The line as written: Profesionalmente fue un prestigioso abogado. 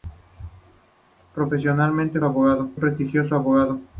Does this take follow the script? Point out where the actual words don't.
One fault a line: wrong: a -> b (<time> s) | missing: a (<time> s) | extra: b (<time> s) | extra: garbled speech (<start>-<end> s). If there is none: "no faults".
wrong: fue -> abogado (2.2 s)